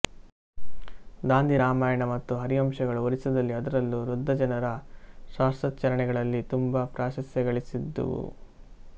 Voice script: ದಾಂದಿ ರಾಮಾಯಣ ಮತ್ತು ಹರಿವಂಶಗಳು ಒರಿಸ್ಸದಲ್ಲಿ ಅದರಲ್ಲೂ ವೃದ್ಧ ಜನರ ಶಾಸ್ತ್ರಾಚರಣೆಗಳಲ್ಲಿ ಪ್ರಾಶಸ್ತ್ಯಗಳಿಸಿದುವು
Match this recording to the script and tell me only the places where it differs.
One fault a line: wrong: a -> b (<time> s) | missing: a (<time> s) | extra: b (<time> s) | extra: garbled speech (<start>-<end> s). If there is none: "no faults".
extra: ತುಂಬ (6.5 s)